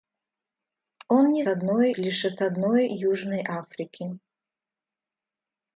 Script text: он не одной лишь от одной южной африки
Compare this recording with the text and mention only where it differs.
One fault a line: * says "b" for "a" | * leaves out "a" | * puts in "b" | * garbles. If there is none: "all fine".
all fine